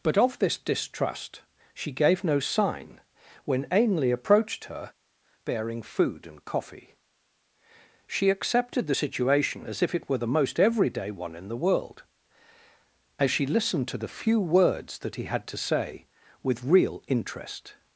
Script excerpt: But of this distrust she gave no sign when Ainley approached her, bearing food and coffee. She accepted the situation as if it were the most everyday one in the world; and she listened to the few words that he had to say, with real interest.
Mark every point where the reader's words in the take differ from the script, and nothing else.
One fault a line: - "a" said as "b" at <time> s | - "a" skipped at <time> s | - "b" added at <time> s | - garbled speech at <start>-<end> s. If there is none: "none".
- "and" said as "as" at 13.2 s